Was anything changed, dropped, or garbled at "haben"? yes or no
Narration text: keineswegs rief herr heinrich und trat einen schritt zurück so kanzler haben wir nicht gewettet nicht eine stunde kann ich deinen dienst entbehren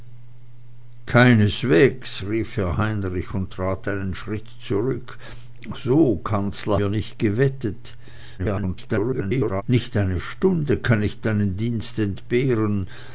yes